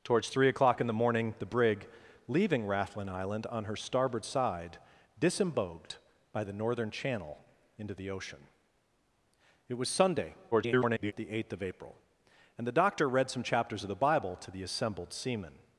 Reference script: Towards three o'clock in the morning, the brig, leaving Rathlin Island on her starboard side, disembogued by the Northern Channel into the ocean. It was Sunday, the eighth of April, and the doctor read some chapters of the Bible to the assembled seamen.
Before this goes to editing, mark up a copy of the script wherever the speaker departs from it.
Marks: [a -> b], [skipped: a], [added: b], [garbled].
Towards three o'clock in the morning, the brig, leaving Rathlin Island on her starboard side, disembogued by the Northern Channel into the ocean. It was Sunday, [garbled] the eighth of April, and the doctor read some chapters of the Bible to the assembled seamen.